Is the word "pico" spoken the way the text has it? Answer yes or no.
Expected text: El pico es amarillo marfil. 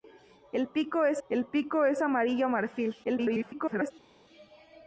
yes